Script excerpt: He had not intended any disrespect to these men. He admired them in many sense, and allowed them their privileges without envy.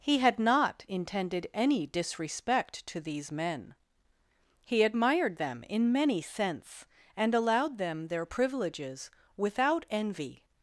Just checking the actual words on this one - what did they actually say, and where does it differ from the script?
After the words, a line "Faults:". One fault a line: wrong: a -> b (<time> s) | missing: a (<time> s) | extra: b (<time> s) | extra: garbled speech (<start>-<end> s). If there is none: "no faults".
He had not intended any disrespect to these men. He admired them in many sense, and allowed them their privileges without envy.
Faults:
no faults